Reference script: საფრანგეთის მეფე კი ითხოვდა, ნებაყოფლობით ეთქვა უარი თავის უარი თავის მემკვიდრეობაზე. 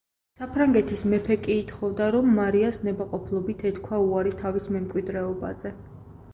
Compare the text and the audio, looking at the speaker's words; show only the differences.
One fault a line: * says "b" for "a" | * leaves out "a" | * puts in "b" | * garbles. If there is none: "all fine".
* puts in "რომ მარიას"
* leaves out "უარი თავის"